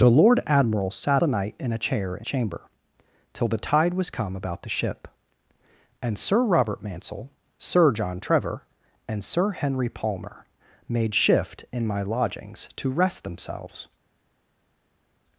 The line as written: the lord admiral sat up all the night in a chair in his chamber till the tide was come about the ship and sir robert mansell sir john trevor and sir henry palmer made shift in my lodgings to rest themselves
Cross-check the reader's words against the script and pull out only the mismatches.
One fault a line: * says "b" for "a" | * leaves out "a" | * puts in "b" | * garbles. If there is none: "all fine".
* leaves out "up all"
* leaves out "his"